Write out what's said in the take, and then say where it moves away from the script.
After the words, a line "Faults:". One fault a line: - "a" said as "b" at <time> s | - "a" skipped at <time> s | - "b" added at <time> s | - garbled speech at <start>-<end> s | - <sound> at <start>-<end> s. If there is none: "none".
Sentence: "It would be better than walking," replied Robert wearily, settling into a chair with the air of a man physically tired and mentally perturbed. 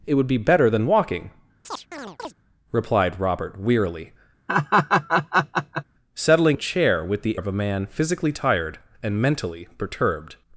"It would be better than walking," replied Robert wearily, settling a chair with the of a man physically tired and mentally perturbed.
Faults:
- chirp at 1.6-2.3 s
- laugh at 4.5-5.8 s
- "into" skipped at 6.6 s
- "air" skipped at 7.4 s